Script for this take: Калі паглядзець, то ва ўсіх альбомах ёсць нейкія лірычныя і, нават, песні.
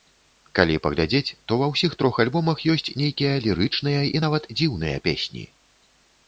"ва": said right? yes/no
yes